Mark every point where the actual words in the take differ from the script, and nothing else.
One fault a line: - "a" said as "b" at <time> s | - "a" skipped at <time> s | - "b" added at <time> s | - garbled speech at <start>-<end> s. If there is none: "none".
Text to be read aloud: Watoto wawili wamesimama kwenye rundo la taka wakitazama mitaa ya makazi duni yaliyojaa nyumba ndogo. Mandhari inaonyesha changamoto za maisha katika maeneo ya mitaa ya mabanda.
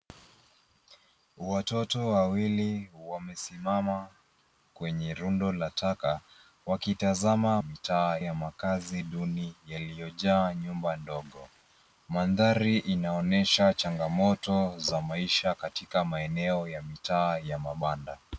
none